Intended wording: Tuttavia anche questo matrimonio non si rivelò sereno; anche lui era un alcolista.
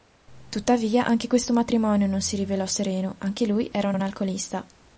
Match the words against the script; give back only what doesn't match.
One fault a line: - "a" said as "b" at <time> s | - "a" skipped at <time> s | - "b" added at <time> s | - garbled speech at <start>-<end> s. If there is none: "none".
- "un" added at 3.9 s